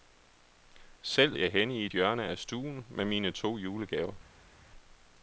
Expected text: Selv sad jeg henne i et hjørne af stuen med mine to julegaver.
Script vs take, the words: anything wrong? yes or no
yes